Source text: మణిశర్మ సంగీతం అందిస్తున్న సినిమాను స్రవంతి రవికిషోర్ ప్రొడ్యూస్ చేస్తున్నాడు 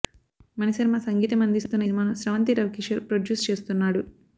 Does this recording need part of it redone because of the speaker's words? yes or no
no